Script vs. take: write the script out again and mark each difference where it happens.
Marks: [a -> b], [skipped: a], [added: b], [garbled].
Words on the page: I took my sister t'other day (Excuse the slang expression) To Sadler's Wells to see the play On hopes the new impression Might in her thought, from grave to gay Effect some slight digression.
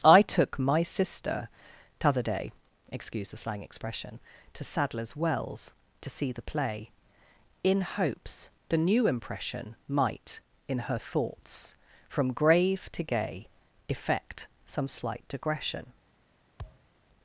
I took my sister t'other day (Excuse the slang expression) To Sadler's Wells to see the play [On -> In] hopes the new impression Might in her [thought, -> thoughts] from grave to gay Effect some slight digression.